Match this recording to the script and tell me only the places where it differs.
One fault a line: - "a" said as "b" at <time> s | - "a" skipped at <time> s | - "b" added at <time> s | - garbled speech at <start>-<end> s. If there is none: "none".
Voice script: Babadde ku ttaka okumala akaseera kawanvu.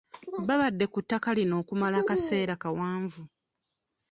- "lino" added at 1.4 s